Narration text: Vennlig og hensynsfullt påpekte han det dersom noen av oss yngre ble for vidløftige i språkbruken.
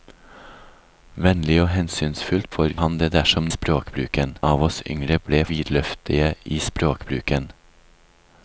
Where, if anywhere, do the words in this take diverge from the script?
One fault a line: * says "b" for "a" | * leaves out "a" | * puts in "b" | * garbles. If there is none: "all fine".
* says "for" for "påpekte"
* says "språkbruken" for "noen"
* leaves out "for"